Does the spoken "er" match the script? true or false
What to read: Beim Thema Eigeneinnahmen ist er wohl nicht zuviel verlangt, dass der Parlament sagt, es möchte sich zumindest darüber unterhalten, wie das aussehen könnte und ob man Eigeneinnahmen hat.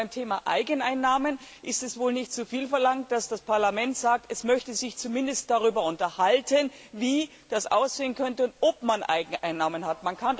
false